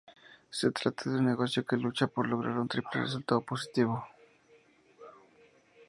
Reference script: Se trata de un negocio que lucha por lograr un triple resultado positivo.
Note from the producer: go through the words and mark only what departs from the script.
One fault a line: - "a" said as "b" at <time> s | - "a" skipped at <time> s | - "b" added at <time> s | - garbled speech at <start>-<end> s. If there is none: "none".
none